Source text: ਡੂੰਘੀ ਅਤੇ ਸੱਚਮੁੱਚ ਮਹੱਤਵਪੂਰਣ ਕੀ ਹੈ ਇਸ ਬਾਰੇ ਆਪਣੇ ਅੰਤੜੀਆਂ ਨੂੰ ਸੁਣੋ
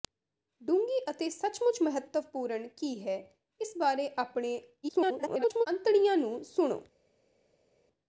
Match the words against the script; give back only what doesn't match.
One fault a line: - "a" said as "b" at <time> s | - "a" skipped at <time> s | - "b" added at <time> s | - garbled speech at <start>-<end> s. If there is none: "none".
- garbled speech at 4.8-5.7 s